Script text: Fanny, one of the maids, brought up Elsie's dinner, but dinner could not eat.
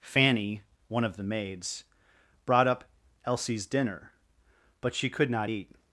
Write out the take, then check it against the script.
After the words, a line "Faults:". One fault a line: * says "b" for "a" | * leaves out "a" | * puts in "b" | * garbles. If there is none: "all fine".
Fanny, one of the maids, brought up Elsie's dinner, but she could not eat.
Faults:
* says "she" for "dinner"